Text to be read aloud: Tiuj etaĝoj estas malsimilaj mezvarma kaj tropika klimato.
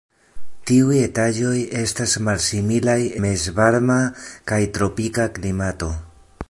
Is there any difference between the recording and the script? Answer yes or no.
no